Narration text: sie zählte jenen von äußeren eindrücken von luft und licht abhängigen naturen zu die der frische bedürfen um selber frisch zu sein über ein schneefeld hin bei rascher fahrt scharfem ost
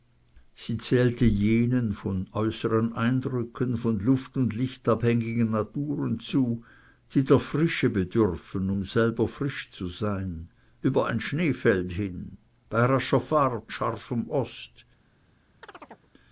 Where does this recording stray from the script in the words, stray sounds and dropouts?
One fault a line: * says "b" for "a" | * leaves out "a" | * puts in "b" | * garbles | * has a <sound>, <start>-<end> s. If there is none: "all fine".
* has a chirp, 15.6-16.1 s